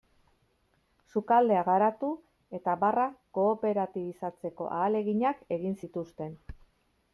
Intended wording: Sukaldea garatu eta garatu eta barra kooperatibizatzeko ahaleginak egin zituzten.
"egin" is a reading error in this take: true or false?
false